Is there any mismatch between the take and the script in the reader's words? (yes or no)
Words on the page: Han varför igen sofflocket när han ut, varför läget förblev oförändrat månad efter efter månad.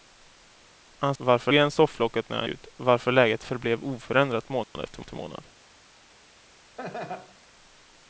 no